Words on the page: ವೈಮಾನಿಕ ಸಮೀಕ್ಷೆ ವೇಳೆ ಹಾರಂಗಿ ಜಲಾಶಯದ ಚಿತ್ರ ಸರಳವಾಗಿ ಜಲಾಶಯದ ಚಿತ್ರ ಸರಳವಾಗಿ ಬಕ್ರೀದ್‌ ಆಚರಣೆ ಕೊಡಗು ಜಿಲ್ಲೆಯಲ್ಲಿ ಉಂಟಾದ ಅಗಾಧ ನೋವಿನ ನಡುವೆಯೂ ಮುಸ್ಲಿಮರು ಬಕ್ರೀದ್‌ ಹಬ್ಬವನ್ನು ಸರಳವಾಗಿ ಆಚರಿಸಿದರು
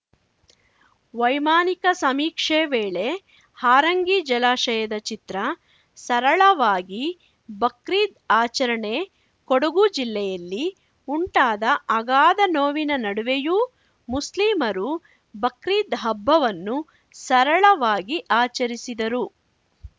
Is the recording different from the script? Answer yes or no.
yes